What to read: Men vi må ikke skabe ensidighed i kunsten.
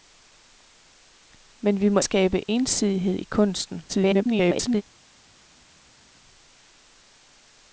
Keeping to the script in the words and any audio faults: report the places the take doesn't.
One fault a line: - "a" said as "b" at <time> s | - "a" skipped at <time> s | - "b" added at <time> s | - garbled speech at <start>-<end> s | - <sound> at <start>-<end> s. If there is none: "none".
- "ikke" skipped at 2.0 s
- garbled speech at 3.9-4.8 s